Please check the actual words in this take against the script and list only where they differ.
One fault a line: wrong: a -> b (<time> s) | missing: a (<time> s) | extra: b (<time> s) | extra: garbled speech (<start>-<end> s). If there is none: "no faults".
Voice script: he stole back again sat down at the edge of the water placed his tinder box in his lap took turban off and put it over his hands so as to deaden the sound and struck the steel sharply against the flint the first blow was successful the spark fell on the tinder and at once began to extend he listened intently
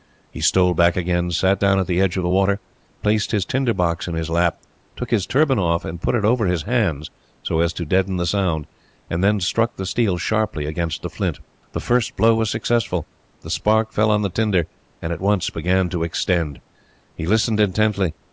extra: his (5.1 s)
extra: then (9.2 s)